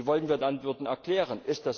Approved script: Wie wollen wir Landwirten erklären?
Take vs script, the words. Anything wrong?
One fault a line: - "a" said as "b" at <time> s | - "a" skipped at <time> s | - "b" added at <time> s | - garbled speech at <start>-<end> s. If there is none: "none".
none